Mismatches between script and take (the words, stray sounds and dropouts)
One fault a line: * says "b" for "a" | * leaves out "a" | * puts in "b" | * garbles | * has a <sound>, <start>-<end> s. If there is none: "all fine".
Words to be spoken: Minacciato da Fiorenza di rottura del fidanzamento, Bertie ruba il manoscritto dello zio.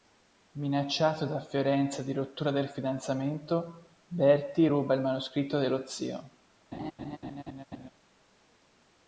* has a laugh, 6.7-7.9 s